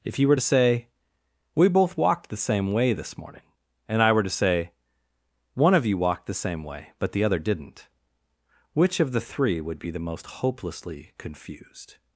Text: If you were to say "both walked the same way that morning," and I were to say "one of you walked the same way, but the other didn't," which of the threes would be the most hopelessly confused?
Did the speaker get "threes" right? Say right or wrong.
wrong